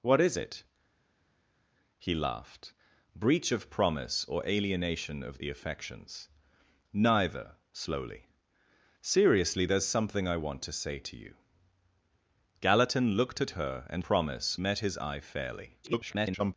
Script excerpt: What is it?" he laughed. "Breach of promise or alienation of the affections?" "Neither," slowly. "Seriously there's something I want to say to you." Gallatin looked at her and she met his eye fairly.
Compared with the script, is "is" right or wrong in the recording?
right